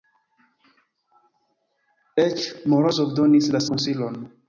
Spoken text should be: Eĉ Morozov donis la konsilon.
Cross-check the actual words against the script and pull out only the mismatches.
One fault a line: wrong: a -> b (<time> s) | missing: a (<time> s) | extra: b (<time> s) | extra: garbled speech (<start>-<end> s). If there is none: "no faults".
no faults